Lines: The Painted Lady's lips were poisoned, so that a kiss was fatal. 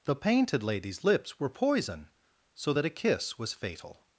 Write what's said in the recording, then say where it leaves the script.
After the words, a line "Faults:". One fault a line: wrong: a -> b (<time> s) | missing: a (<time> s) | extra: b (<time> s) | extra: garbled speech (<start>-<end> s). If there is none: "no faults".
The Painted Lady's lips were poison, so that a kiss was fatal.
Faults:
wrong: poisoned -> poison (1.5 s)